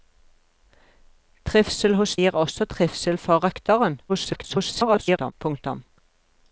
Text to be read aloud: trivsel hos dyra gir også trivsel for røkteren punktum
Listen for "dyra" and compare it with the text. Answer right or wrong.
wrong